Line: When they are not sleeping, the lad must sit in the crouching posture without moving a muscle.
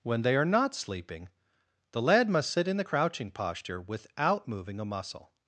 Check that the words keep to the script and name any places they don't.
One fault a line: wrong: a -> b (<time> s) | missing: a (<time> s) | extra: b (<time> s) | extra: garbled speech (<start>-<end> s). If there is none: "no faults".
no faults